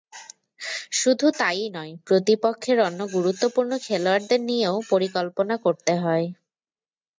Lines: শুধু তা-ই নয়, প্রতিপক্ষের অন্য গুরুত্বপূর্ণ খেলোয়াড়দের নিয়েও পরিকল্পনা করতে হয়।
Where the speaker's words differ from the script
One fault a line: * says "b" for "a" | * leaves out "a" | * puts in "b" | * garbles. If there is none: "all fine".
all fine